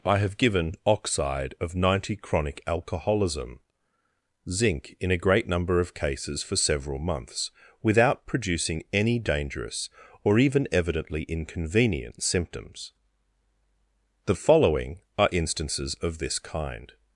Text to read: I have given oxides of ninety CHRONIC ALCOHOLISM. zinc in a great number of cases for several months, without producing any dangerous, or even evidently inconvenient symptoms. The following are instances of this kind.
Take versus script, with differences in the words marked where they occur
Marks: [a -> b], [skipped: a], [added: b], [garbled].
I have given [oxides -> oxide] of ninety CHRONIC ALCOHOLISM. zinc in a great number of cases for several months, without producing any dangerous, or even evidently inconvenient symptoms. The following are instances of this kind.